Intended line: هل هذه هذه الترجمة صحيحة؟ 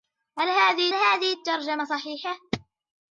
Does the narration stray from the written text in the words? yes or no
no